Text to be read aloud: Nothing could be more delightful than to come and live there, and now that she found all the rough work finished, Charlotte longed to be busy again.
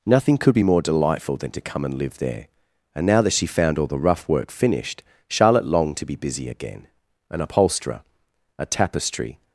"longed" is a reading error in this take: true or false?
false